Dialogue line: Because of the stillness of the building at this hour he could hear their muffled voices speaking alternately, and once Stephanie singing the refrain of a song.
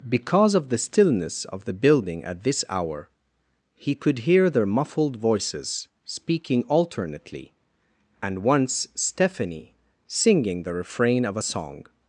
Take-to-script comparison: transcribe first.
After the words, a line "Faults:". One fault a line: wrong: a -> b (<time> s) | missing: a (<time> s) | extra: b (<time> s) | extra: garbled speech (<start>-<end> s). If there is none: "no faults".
Because of the stillness of the building at this hour he could hear their muffled voices speaking alternately, and once Stephanie singing the refrain of a song.
Faults:
no faults